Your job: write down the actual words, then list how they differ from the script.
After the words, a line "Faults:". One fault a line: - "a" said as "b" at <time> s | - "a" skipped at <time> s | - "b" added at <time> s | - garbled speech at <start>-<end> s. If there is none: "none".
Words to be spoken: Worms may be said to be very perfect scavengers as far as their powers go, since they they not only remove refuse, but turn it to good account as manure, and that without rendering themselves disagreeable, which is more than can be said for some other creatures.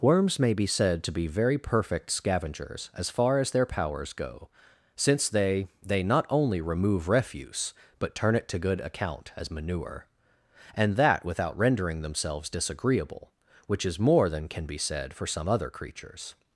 Worms may be said to be very perfect scavengers as far as their powers go, since they they not only remove refuse, but turn it to good account as manure, and that without rendering themselves disagreeable, which is more than can be said for some other creatures.
Faults:
none